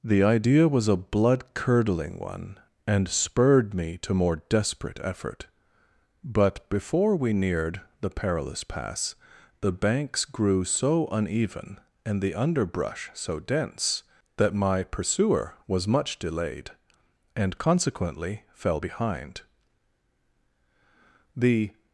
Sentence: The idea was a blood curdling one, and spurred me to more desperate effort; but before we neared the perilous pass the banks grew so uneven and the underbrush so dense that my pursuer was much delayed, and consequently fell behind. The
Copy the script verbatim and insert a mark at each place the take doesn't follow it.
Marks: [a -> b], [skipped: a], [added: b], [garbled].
The idea was a blood curdling one, and spurred me to more desperate effort; but before we neared the perilous pass the banks grew so uneven and the underbrush so dense that my pursuer was much delayed, and consequently fell behind. The